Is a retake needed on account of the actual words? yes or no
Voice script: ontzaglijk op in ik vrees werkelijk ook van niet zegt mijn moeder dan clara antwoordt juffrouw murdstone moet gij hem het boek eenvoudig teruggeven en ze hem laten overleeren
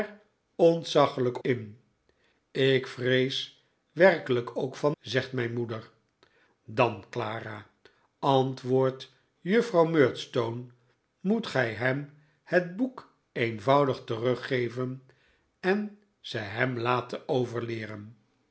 yes